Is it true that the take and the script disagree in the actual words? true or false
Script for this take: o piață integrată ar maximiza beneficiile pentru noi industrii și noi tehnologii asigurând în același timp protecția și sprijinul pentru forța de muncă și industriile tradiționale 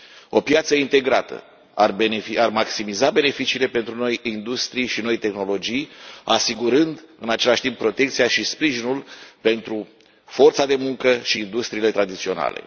false